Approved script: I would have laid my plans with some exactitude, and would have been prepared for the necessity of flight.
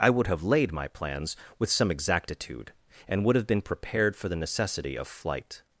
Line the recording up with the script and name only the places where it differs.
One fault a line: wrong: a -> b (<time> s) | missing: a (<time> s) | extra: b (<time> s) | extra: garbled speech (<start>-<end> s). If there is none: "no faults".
no faults